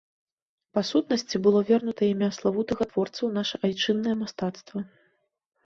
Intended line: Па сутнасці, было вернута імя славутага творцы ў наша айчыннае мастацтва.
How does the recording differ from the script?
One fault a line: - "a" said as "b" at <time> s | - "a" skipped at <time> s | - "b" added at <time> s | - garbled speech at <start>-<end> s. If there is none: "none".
none